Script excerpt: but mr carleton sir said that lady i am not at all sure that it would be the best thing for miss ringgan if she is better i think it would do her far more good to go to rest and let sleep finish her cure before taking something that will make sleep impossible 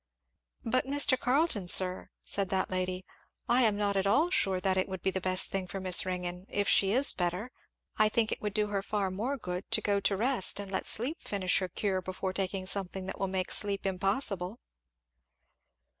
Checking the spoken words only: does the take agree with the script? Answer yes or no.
yes